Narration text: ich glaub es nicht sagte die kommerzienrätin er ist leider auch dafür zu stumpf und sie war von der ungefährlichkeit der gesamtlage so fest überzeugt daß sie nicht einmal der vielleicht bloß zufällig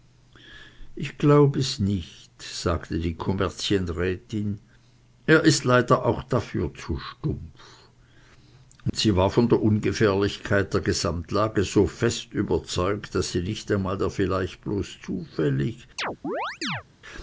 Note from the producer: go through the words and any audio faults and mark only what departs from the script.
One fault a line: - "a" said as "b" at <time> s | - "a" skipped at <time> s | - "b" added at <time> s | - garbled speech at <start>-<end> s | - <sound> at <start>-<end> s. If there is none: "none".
- dropout at 8.9-8.9 s
- chirp at 16.0-16.8 s